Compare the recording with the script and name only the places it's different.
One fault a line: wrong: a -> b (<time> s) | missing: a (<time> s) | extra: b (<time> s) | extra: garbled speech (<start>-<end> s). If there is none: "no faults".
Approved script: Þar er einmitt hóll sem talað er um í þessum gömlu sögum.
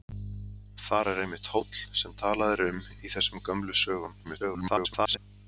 extra: garbled speech (4.2-5.2 s)